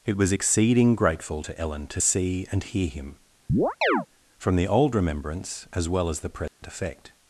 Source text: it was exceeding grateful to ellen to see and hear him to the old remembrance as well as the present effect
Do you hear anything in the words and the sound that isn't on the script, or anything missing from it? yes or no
yes